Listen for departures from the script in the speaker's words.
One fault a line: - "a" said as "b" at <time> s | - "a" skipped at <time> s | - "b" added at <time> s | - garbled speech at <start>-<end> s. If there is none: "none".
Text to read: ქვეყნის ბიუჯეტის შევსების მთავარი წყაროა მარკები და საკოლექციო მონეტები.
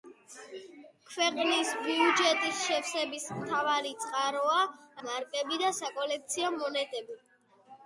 none